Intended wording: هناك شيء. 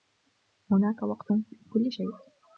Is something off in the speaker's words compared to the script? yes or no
yes